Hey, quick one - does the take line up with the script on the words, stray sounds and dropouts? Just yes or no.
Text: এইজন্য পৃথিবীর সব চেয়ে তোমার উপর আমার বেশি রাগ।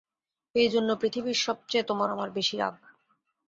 no